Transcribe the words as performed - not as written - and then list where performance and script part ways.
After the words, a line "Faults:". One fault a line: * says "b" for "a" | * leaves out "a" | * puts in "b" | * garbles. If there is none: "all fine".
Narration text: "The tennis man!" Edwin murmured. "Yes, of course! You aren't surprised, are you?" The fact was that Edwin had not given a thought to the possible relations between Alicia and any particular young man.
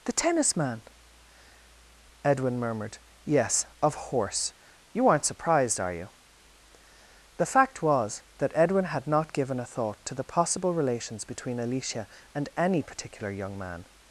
"The tennis man!" Edwin murmured. "Yes, of horse! You aren't surprised, are you?" The fact was that Edwin had not given a thought to the possible relations between Alicia and any particular young man.
Faults:
* says "horse" for "course"